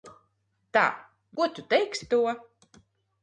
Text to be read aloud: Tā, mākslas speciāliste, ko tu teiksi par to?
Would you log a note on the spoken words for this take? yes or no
yes